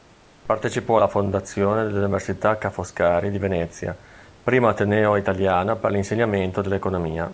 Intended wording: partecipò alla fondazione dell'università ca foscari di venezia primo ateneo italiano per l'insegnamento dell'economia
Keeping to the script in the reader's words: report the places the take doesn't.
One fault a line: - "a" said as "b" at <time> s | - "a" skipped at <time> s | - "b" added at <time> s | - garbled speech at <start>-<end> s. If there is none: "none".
none